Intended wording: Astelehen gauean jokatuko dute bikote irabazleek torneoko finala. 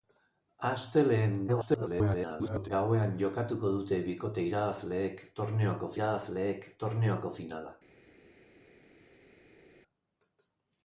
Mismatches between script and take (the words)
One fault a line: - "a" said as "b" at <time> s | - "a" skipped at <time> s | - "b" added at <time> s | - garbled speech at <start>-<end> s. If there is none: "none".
- garbled speech at 1.5-2.7 s
- "irabazleek torneoko" added at 5.9 s